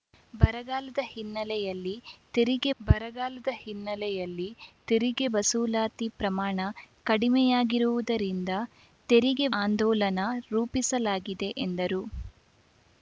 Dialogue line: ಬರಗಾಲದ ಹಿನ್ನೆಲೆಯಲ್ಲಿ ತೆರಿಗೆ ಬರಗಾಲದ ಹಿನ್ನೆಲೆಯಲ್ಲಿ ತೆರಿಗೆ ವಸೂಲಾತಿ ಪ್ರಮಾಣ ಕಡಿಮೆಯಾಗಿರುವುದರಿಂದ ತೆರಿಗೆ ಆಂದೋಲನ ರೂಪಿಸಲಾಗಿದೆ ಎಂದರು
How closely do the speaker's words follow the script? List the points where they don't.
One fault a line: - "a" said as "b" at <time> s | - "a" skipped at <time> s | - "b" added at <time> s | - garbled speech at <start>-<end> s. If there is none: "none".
none